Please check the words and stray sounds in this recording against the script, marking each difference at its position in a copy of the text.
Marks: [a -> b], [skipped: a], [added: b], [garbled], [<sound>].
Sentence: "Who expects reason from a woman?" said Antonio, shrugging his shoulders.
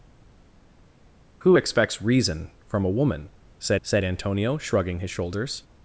"Who expects reason from a woman?" said [added: said] Antonio, shrugging his shoulders.